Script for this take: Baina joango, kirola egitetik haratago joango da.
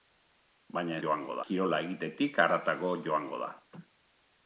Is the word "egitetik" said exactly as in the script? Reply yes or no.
yes